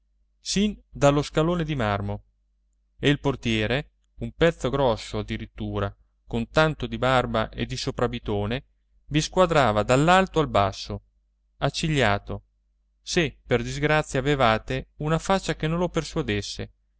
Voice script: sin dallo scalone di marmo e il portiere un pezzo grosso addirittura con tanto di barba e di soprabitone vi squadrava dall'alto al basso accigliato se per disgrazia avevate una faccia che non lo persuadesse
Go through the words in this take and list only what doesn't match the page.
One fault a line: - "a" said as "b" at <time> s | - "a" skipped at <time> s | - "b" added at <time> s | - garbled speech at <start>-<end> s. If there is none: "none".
none